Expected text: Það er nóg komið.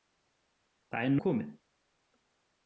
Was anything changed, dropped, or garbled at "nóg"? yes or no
yes